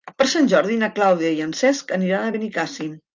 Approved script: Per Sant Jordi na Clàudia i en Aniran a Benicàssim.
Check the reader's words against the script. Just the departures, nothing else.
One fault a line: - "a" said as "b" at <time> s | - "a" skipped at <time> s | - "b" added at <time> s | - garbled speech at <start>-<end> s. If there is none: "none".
- "Cesc" added at 1.6 s